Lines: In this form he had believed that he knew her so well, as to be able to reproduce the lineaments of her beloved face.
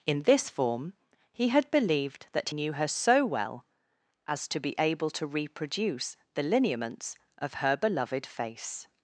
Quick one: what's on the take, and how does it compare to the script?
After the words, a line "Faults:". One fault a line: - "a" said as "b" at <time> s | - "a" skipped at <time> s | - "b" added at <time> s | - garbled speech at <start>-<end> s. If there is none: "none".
In this form he had believed that knew her so well, as to be able to reproduce the lineaments of her beloved face.
Faults:
- "he" skipped at 2.5 s